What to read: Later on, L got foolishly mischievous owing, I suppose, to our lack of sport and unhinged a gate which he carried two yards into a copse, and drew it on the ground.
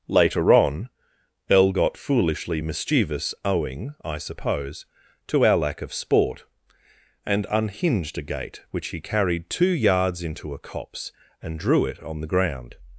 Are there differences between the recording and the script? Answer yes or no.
no